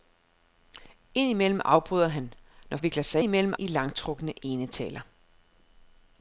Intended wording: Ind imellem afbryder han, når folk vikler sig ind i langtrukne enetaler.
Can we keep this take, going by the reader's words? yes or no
no